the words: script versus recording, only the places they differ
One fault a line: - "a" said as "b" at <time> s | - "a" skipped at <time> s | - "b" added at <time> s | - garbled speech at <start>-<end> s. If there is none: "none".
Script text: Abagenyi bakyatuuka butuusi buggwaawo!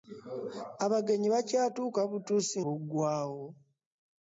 none